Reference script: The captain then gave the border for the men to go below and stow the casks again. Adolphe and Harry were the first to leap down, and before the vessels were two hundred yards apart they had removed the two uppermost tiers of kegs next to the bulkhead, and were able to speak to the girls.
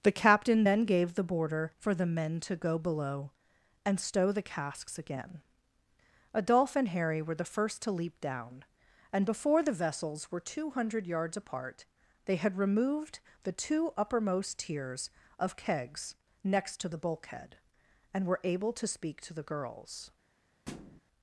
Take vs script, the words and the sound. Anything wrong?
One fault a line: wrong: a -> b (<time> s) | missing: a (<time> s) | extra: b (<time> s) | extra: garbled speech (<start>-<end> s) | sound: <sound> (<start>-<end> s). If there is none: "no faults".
sound: thud (20.7-21.0 s)